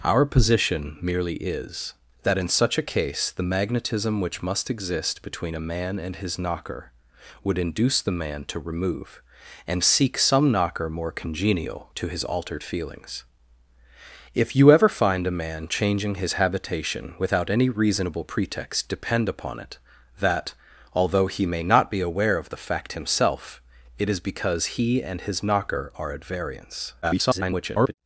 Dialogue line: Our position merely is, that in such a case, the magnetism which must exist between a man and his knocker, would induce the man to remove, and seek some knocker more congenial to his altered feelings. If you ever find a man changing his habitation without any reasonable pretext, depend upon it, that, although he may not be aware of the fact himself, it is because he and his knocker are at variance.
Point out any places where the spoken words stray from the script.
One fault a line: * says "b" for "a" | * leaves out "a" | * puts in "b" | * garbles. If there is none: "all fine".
* garbles